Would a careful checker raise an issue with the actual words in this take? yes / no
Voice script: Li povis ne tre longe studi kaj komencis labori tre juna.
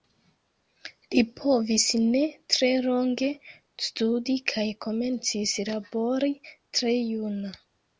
no